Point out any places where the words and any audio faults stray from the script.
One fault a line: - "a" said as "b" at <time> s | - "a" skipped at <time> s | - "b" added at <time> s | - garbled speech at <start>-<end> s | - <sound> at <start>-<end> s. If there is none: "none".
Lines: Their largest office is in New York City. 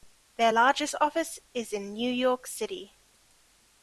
none